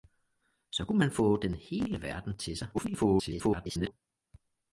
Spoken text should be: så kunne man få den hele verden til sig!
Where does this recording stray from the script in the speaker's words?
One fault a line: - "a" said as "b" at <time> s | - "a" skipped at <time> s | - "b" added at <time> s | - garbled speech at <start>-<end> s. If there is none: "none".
- garbled speech at 2.7-3.9 s